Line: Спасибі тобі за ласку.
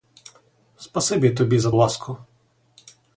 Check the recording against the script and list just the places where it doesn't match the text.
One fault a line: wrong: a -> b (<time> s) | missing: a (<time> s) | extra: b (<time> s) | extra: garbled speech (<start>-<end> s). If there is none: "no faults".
no faults